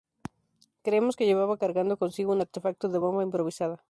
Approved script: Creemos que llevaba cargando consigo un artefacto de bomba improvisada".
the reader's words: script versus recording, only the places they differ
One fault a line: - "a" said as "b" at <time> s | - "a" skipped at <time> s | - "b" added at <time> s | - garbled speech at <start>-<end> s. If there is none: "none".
none